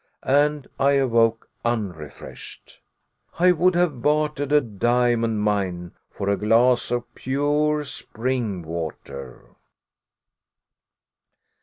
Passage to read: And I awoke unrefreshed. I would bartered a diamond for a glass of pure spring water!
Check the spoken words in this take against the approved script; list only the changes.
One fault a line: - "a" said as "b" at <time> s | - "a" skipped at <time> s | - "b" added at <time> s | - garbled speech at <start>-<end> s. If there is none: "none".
- "have" added at 3.8 s
- "mine" added at 5.4 s